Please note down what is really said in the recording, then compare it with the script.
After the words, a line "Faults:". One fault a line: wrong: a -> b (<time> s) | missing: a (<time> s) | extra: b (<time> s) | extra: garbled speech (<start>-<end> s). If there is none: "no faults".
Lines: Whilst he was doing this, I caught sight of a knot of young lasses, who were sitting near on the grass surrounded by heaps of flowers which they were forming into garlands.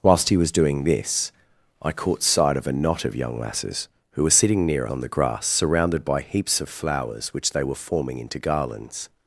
Whilst he was doing this, I caught sight of a knot of young lasses, who were sitting near on the grass surrounded by heaps of flowers which they were forming into garlands.
Faults:
no faults